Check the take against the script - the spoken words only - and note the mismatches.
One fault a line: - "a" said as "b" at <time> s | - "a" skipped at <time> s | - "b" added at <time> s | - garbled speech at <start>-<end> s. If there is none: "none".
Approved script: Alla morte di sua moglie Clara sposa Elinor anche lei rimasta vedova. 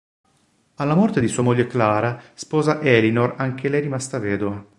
none